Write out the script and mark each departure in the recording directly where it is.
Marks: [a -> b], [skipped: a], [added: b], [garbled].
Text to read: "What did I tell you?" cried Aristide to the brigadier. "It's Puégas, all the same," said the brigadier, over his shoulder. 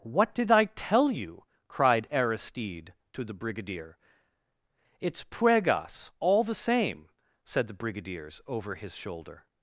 "What did I tell you?" cried Aristide to the brigadier. "It's Puégas, all the same," said the [brigadier, -> brigadiers] over his shoulder.